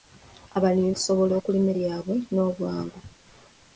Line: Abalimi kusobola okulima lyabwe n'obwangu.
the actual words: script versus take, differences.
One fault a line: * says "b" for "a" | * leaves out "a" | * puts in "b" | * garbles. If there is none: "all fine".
all fine